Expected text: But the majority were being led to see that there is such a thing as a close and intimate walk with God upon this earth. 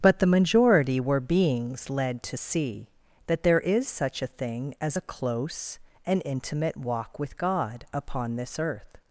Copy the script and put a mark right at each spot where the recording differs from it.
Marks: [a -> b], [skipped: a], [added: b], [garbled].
But the majority were [being -> beings] led to see that there is such a thing as a close and intimate walk with God upon this earth.